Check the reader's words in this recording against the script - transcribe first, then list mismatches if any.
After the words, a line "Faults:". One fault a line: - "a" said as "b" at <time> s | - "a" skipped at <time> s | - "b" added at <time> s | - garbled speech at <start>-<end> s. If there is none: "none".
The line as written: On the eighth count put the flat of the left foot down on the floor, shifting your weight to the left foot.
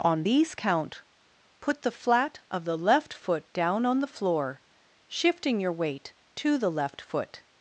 On these count put the flat of the left foot down on the floor, shifting your weight to the left foot.
Faults:
- "the eighth" said as "these" at 0.2 s